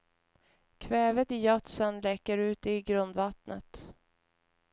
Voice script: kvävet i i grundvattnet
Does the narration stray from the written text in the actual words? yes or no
yes